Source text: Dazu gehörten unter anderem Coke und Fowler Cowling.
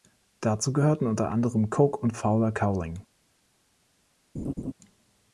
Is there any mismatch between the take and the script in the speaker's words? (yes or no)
no